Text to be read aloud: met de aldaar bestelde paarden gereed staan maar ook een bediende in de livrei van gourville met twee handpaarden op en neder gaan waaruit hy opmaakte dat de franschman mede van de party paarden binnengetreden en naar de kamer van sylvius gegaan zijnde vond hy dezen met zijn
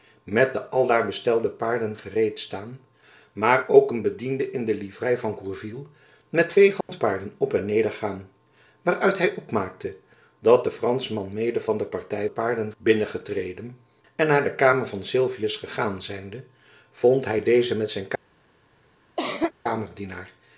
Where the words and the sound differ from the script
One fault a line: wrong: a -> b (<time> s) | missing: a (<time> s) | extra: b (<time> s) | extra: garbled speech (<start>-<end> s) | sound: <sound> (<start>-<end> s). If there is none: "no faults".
sound: dropout (6.8-6.9 s)
sound: cough (19.2-19.5 s)